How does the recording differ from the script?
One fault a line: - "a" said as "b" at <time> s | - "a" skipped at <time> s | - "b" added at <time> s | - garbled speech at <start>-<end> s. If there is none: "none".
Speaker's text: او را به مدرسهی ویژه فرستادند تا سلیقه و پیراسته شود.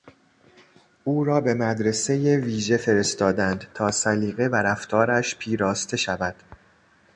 - "رفتارش" added at 4.5 s